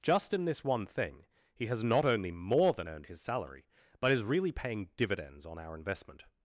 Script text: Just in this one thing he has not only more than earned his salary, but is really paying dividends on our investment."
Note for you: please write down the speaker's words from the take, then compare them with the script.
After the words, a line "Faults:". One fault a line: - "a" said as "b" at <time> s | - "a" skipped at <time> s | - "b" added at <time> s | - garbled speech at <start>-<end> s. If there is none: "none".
Just in this one thing he has not only more than earned his salary, but is really paying dividends on our investment."
Faults:
none